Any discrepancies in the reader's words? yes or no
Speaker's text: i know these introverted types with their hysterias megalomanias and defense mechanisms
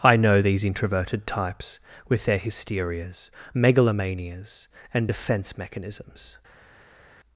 no